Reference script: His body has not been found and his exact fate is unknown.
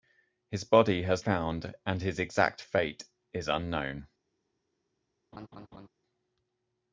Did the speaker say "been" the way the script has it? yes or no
no